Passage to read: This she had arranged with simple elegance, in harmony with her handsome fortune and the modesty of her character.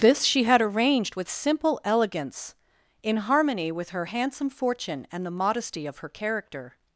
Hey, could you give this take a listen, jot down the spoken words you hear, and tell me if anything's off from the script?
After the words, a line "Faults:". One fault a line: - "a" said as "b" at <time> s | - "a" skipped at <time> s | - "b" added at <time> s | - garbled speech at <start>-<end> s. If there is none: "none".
This she had arranged with simple elegance, in harmony with her handsome fortune and the modesty of her character.
Faults:
none